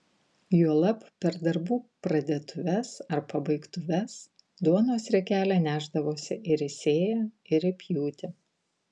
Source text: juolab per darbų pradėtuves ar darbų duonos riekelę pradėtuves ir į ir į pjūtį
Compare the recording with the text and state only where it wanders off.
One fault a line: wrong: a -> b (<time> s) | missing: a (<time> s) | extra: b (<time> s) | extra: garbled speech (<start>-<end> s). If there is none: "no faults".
wrong: darbų -> pabaigtuves (3.3 s)
wrong: pradėtuves -> nešdavosi (5.6 s)
extra: sėją (6.7 s)